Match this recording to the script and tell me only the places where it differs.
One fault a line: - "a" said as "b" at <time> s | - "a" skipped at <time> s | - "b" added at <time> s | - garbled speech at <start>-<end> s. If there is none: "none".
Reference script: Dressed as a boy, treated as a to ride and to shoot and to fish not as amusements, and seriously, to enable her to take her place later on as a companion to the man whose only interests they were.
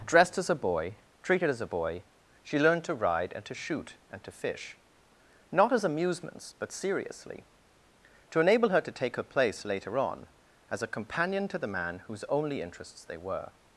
- "boy she learned" added at 1.7 s
- "and" said as "but" at 6.6 s